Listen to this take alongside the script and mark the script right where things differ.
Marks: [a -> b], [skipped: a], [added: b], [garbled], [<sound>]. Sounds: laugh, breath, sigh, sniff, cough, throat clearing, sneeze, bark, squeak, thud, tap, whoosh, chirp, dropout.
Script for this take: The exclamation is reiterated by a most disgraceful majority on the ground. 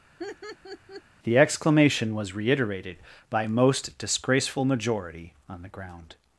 [laugh] The exclamation [is -> was] reiterated by a most disgraceful majority on the ground.